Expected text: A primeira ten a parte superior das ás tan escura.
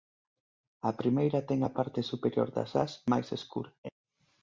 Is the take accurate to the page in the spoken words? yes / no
no